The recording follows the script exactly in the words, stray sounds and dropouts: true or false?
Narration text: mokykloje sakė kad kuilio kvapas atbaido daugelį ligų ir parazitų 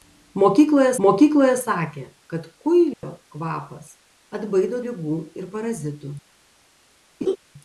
false